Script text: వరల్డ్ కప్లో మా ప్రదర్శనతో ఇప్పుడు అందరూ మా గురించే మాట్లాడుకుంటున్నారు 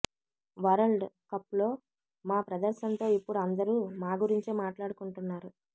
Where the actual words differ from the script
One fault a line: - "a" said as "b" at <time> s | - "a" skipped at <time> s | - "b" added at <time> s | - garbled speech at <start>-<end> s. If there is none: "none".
none